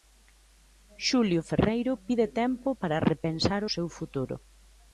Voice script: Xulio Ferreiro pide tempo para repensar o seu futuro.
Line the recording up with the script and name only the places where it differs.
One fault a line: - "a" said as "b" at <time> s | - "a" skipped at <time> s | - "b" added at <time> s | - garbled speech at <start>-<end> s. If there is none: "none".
none